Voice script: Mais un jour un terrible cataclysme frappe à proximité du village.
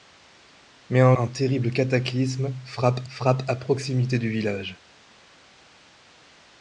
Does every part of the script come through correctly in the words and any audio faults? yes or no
no